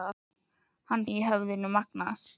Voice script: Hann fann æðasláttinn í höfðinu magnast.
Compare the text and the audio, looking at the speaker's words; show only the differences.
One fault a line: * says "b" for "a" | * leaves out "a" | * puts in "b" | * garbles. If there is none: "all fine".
* leaves out "fann æðasláttinn"